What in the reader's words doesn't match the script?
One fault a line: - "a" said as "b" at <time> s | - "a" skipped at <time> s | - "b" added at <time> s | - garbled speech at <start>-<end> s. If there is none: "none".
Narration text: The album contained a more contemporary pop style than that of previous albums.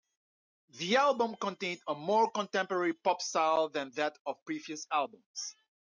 none